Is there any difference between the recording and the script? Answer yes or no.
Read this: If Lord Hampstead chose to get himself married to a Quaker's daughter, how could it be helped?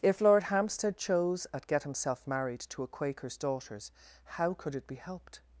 yes